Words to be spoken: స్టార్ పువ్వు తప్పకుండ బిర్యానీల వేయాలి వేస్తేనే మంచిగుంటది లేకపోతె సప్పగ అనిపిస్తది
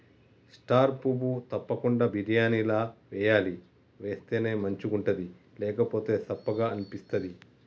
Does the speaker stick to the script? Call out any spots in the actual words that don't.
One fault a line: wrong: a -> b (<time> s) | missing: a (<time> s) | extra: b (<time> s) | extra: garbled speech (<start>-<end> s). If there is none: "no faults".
no faults